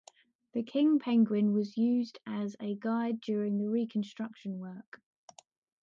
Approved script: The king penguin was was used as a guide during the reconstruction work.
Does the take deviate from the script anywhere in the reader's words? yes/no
yes